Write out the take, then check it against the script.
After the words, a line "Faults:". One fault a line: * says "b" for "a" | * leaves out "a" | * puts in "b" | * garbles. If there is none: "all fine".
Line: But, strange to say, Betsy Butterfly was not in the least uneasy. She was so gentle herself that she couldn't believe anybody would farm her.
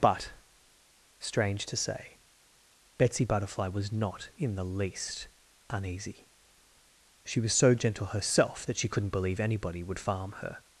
But, strange to say, Betsy Butterfly was not in the least uneasy. She was so gentle herself that she couldn't believe anybody would farm her.
Faults:
all fine